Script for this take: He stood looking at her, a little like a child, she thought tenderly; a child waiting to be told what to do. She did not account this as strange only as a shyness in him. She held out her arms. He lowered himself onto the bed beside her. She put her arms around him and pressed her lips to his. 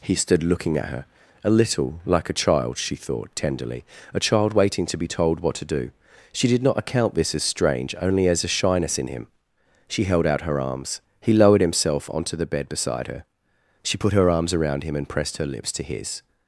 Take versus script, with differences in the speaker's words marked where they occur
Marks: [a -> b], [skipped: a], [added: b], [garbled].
He stood looking at her, a little like a child, she thought tenderly; a child waiting to be told what to do. She did not account this as strange only as a shyness in him. She held out her arms. He lowered himself onto the bed beside her. She put her arms around him and pressed her lips to his.